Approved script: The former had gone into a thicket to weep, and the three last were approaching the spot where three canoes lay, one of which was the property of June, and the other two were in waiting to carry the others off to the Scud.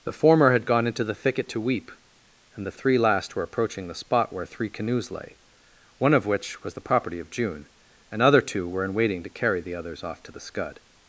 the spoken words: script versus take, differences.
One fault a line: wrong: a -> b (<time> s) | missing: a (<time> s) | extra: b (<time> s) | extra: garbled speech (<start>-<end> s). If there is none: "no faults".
wrong: a -> the (1.0 s)
missing: the (8.2 s)